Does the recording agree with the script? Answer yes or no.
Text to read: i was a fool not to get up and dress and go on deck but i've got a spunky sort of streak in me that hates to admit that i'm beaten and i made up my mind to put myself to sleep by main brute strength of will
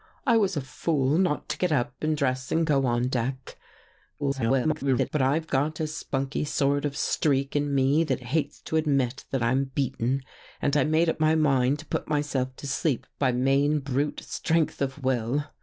no